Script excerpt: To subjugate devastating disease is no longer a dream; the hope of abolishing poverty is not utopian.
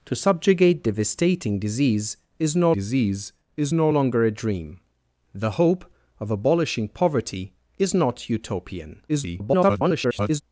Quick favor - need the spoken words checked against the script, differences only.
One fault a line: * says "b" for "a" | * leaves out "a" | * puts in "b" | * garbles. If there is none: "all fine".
* puts in "disease is no"
* garbles